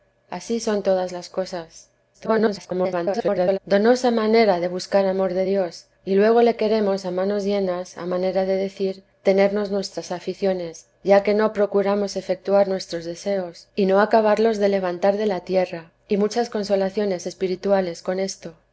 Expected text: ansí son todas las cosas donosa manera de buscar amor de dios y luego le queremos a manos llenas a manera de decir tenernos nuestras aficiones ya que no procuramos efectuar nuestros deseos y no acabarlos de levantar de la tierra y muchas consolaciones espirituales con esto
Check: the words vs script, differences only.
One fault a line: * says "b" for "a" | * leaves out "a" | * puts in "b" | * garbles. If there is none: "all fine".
* garbles